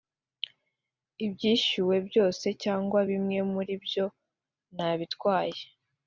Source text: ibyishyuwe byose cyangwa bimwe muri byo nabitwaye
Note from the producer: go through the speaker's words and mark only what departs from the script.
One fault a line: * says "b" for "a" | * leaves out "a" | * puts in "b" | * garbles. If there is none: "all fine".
all fine